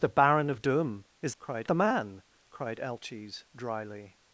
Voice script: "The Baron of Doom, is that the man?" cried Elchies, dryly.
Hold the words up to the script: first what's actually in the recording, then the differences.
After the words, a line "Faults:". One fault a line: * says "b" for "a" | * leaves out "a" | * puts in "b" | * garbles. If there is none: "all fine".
"The Baron of Doom, is cried the man?" cried Elchies, dryly.
Faults:
* says "cried" for "that"